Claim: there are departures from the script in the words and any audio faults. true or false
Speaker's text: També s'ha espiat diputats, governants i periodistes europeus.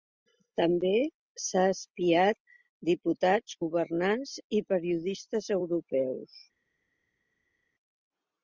false